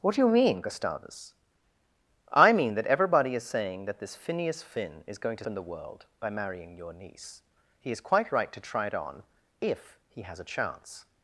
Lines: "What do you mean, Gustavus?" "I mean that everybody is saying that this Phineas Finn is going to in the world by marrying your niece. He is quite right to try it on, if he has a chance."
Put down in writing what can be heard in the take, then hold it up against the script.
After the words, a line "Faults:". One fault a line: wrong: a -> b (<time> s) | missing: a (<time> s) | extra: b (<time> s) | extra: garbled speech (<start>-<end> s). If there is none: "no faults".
"What do you mean, Gustavus?" "I mean that everybody is saying that this Phineas Finn is going to in the world by marrying your niece. He is quite right to try it on, if he has a chance."
Faults:
no faults